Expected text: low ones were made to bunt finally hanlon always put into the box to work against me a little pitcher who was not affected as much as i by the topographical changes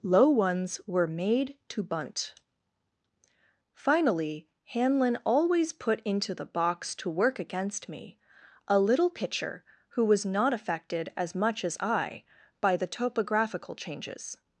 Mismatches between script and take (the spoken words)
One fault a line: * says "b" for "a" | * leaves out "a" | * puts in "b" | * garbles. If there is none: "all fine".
all fine